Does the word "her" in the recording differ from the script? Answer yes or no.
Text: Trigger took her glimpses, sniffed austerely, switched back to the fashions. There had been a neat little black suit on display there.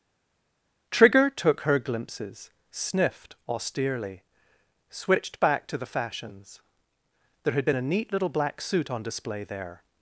no